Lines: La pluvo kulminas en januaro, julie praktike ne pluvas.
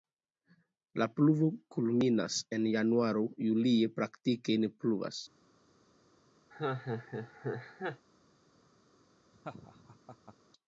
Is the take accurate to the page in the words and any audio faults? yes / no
no